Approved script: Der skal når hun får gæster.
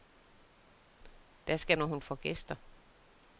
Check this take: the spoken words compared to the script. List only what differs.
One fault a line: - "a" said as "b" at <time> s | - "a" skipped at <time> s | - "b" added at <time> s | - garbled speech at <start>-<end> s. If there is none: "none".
none